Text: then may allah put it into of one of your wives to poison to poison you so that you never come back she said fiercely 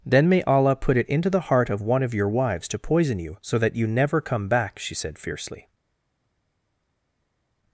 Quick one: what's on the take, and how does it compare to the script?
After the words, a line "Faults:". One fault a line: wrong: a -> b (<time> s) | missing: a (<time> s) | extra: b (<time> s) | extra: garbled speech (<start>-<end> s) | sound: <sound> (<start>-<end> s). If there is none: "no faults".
then may allah put it into the heart of one of your wives to poison you so that you never come back she said fiercely
Faults:
extra: the heart (1.3 s)
missing: to poison (3.2 s)